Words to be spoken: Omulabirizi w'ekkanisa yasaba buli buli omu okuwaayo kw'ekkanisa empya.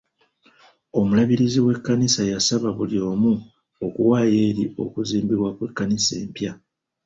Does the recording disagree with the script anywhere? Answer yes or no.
yes